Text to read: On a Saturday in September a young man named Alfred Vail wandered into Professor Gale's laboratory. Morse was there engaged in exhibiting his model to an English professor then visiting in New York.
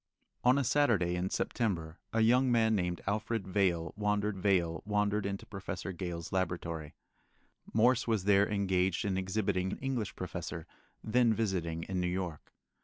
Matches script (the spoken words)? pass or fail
fail